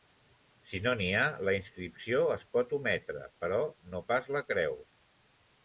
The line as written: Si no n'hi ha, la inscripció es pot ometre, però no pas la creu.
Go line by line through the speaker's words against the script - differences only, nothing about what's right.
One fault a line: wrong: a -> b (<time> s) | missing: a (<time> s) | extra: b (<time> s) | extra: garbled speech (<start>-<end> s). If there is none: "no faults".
no faults